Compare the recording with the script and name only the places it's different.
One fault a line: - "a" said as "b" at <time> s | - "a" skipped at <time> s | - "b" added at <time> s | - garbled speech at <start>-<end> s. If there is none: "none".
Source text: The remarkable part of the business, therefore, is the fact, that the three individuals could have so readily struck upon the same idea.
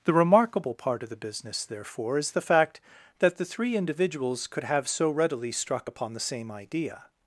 none